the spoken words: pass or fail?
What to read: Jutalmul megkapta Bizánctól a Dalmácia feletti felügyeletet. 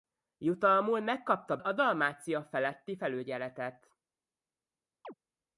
fail